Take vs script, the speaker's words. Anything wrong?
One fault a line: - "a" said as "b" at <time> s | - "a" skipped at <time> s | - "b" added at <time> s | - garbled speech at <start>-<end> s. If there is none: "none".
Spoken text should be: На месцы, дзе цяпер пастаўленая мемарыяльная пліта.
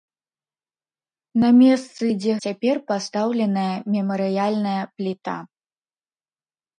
none